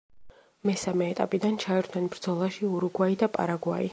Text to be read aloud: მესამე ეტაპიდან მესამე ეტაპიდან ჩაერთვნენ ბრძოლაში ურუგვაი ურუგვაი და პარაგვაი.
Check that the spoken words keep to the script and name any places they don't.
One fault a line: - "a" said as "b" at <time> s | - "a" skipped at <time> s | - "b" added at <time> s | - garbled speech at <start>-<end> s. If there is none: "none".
- "მესამე ეტაპიდან" skipped at 1.6 s
- "ურუგვაი" skipped at 3.2 s